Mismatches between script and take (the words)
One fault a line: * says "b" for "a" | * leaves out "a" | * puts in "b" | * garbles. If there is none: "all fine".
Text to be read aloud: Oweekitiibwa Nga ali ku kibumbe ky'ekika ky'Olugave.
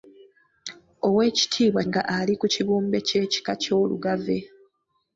all fine